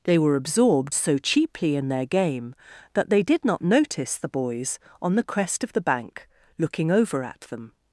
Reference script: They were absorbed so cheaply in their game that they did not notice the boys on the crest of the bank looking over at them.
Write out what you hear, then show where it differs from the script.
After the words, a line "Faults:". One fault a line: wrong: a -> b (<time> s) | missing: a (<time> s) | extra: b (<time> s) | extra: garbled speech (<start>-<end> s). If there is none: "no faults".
They were absorbed so cheaply in their game that they did not notice the boys on the crest of the bank looking over at them.
Faults:
no faults